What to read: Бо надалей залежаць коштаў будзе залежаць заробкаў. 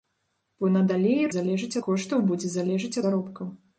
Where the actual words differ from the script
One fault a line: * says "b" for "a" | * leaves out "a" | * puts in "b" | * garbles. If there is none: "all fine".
all fine